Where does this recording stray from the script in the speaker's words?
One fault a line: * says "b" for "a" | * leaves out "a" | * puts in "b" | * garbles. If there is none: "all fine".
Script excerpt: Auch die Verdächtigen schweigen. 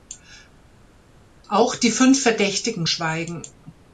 * puts in "fünf"